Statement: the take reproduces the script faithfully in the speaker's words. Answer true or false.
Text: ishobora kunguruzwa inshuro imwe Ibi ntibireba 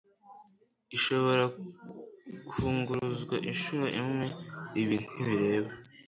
true